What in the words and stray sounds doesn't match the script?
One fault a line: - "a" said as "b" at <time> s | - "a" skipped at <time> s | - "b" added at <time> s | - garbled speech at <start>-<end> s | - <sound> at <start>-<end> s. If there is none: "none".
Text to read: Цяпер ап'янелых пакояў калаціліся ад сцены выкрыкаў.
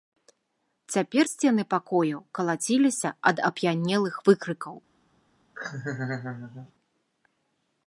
- "ап'янелых" said as "сцены" at 1.3 s
- "сцены" said as "ап'янелых" at 3.5 s
- laugh at 5.6-6.7 s